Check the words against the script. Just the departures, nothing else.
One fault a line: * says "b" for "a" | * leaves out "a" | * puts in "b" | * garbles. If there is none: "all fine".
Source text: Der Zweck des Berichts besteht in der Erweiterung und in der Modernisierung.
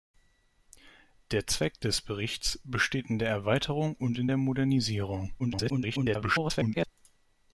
* garbles